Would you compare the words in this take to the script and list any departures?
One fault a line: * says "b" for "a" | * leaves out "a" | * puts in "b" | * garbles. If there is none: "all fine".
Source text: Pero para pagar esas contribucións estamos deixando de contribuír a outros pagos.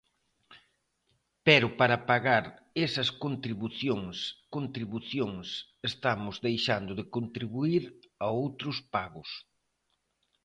* puts in "contribucións"